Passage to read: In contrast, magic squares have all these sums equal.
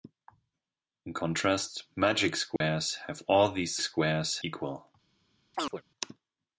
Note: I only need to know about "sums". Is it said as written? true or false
false